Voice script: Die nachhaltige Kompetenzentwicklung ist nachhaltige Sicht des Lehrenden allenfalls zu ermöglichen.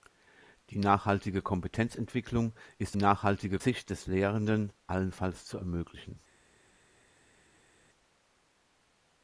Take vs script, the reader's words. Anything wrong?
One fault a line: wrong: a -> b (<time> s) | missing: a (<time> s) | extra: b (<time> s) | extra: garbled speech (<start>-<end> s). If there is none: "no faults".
no faults